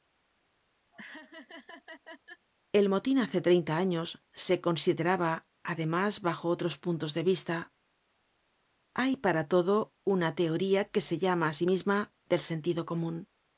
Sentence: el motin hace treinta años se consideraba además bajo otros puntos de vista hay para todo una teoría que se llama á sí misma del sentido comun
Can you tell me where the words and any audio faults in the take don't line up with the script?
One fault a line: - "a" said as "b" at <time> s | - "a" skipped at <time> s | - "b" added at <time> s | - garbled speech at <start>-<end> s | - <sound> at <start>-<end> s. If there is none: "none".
- laugh at 0.9-2.5 s